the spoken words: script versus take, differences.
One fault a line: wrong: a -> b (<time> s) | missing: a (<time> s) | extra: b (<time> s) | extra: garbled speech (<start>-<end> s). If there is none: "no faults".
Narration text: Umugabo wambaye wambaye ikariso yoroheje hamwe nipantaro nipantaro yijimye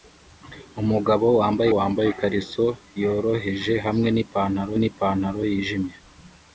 no faults